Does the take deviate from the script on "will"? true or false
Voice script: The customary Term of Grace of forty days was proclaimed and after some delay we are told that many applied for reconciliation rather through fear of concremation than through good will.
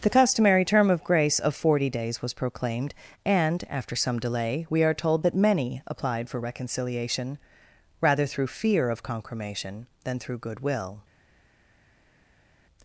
false